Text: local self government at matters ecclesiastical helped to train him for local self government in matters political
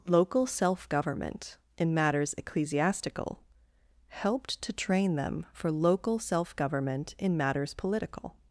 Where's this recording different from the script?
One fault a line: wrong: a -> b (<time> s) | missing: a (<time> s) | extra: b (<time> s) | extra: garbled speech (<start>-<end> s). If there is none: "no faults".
wrong: at -> in (1.8 s)
wrong: him -> them (5.2 s)